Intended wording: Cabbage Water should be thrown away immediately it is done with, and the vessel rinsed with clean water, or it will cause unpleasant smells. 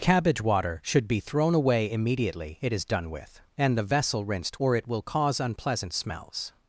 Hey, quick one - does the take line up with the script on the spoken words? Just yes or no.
no